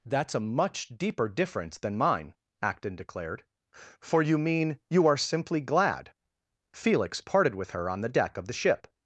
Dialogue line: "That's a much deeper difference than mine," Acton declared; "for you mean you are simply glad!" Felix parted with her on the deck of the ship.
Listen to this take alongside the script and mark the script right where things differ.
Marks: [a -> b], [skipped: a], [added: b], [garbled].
"That's a much deeper difference than mine," Acton declared; "for you mean you are simply glad!" Felix parted with her on the deck of the ship.